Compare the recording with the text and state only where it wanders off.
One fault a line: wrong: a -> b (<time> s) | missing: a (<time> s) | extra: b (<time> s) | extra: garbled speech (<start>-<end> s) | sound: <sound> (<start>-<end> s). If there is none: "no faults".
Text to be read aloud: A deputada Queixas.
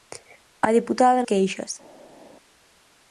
no faults